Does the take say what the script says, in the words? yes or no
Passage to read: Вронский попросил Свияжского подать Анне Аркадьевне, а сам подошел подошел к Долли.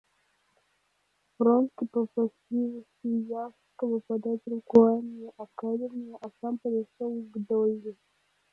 no